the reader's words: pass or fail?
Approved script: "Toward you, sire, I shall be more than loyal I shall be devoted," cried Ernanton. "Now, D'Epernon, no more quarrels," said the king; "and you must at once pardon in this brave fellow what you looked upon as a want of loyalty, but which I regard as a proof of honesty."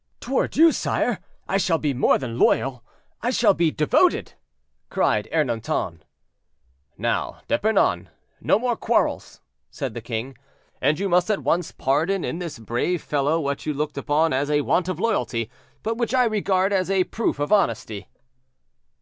pass